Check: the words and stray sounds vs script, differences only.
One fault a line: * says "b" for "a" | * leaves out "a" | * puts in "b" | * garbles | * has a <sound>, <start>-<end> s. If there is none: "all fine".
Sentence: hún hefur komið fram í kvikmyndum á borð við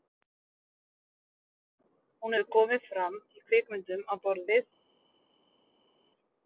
all fine